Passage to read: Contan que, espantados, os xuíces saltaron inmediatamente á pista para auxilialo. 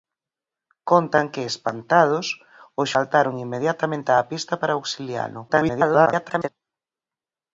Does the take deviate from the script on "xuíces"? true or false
true